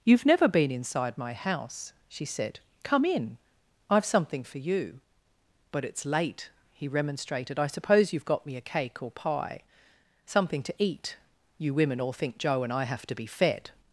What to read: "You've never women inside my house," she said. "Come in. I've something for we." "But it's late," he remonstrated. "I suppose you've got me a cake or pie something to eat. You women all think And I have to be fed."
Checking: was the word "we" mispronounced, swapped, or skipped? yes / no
yes